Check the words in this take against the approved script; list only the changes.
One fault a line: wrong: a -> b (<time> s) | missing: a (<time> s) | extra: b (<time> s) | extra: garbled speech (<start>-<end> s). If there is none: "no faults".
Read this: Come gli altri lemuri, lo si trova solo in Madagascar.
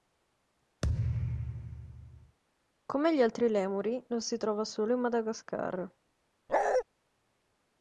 no faults